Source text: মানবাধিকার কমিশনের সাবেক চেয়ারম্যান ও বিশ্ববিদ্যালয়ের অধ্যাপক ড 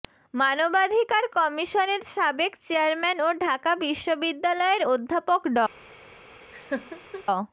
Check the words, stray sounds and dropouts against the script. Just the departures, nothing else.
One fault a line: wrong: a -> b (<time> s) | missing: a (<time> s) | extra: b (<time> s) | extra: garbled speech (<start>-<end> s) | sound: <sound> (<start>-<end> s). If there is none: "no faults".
extra: ঢাকা (3.4 s)
sound: laugh (6.5-7.2 s)